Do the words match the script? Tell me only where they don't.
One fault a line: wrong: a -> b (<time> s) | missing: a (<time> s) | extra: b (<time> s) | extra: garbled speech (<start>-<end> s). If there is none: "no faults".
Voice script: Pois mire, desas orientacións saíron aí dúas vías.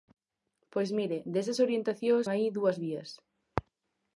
missing: saíron (2.2 s)